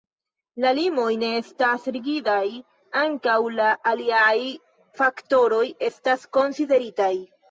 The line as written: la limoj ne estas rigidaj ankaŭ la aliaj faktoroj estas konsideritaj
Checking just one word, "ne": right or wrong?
right